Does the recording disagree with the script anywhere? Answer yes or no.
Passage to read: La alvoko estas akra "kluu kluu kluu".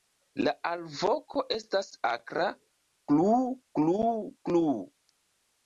no